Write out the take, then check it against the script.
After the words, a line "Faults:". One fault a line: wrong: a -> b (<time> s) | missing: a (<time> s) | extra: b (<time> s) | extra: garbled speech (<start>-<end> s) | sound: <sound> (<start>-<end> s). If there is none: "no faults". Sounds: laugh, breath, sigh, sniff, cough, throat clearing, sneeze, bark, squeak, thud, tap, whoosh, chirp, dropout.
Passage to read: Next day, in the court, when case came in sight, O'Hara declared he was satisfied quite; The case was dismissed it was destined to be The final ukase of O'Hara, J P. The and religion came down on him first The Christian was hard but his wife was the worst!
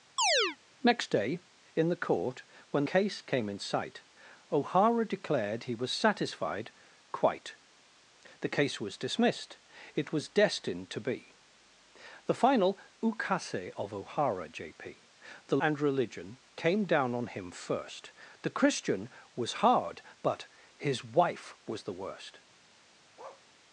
Next day, in the court, when case came in sight, O'Hara declared he was satisfied quite; The case was dismissed it was destined to be The final ukase of O'Hara, J P. The and religion came down on him first The Christian was hard but his wife was the worst!
Faults:
sound: chirp (0.2-0.6 s)
sound: bark (23.2-23.5 s)